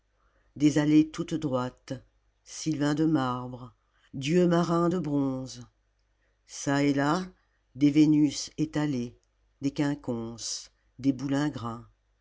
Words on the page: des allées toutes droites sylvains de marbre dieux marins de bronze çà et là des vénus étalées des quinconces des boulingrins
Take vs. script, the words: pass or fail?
pass